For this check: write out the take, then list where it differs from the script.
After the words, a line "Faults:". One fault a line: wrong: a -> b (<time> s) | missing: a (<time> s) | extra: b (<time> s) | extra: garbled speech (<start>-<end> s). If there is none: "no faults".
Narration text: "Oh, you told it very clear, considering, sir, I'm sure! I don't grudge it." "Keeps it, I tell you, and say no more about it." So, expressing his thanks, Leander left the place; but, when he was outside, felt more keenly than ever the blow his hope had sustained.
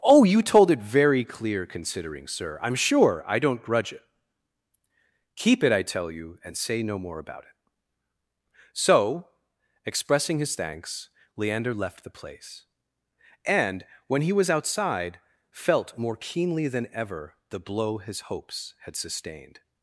"Oh, you told it very clear, considering, sir, I'm sure! I don't grudge it." "Keep it, I tell you, and say no more about it." So, expressing his thanks, Leander left the place; and, when he was outside, felt more keenly than ever the blow his hopes had sustained.
Faults:
wrong: Keeps -> Keep (5.3 s)
wrong: but -> and (13.4 s)
wrong: hope -> hopes (18.3 s)